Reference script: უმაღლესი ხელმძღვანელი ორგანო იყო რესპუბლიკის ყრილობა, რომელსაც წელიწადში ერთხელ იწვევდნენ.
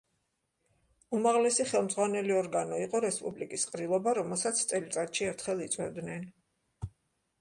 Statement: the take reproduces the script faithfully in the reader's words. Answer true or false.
true